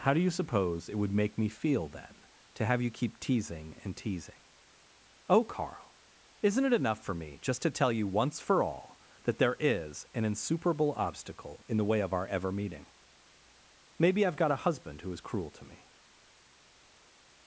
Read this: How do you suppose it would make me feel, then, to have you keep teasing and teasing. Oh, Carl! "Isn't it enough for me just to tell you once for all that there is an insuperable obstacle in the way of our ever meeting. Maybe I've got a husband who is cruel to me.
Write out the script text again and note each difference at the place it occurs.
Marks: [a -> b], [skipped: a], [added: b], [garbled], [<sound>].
How do you suppose it would make me feel, then, to have you keep teasing and teasing. Oh, Carl! "Isn't it enough for me just to tell you once for all that there is an insuperable obstacle in the way of our ever meeting. Maybe I've got a husband who is cruel to me.